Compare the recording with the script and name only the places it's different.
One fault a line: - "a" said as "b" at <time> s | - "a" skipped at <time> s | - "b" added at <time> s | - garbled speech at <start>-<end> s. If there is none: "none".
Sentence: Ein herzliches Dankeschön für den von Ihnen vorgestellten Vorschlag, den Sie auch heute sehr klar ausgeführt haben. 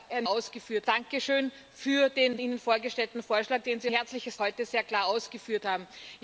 - "herzliches" said as "ausgeführt" at 0.3 s
- "von" skipped at 2.4 s
- "auch" said as "herzliches" at 3.9 s